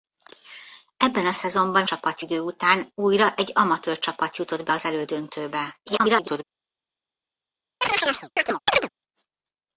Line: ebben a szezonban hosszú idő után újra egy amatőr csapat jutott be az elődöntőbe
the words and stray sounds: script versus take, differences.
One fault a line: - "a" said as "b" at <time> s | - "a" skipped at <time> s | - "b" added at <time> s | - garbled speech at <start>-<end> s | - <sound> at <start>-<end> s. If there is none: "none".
- "hosszú" said as "csapat" at 1.8 s
- garbled speech at 5.9-6.4 s
- chirp at 7.8-8.9 s